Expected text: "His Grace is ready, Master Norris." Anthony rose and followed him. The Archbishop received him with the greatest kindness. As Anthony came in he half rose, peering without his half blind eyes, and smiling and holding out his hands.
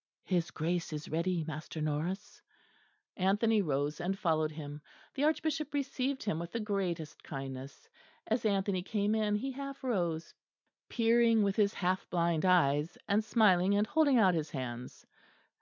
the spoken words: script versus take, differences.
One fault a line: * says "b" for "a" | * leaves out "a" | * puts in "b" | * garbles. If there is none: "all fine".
* says "with" for "without"